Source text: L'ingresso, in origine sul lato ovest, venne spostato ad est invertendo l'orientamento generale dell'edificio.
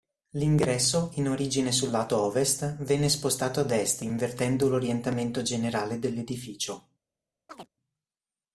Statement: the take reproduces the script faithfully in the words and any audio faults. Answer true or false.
false